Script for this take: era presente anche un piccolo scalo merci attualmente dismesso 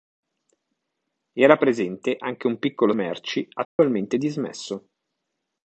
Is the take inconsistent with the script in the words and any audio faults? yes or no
yes